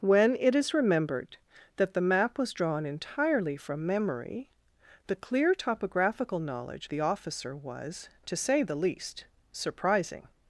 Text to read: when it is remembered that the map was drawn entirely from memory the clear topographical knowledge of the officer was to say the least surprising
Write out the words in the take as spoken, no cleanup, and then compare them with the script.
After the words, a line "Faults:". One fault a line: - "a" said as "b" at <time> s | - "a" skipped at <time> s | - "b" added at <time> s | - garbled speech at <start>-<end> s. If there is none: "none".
when it is remembered that the map was drawn entirely from memory the clear topographical knowledge the officer was to say the least surprising
Faults:
- "of" skipped at 6.9 s